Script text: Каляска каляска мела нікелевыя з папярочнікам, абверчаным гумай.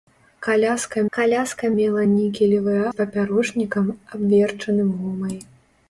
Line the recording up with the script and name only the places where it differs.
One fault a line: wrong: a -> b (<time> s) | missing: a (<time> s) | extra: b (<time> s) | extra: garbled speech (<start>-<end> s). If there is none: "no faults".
no faults